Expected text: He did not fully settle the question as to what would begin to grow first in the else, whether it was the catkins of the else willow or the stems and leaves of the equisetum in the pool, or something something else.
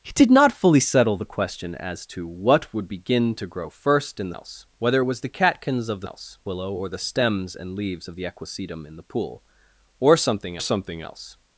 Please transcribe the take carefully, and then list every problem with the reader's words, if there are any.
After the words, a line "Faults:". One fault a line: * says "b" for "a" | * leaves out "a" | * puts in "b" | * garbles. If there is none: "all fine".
He did not fully settle the question as to what would begin to grow first in the else, whether it was the catkins of the else willow or the stems and leaves of the equisetum in the pool, or something something else.
Faults:
all fine